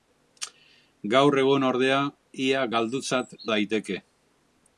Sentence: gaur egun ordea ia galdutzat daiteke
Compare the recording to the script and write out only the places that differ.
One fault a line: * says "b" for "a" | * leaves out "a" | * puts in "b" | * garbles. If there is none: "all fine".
all fine